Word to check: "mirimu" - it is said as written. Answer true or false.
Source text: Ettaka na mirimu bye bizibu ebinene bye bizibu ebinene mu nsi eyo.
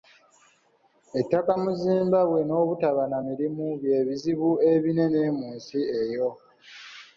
false